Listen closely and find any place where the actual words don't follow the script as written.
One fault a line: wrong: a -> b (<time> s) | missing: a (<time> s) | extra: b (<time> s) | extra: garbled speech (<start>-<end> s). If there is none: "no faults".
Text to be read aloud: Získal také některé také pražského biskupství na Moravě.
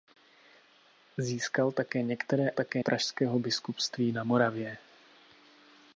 no faults